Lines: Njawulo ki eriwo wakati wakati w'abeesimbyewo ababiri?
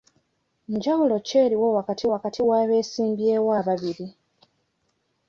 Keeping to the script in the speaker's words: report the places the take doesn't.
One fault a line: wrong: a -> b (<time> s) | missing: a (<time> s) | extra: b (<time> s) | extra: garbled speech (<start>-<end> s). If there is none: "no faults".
no faults